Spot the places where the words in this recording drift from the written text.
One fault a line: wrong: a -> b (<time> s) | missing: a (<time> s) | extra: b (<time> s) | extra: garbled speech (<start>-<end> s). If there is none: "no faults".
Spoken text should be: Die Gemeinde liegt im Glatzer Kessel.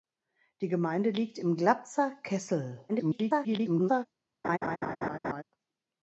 extra: garbled speech (2.9-4.1 s)